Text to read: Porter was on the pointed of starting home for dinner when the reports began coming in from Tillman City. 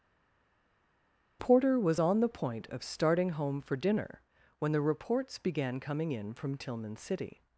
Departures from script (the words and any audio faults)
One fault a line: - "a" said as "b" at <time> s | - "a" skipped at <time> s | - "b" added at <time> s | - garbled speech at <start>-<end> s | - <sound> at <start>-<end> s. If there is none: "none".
- "pointed" said as "point" at 2.3 s